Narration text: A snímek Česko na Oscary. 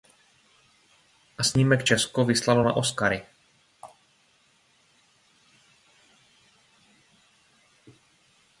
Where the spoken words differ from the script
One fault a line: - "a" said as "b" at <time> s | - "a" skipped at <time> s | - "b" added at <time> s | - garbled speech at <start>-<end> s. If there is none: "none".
- "vyslalo" added at 2.2 s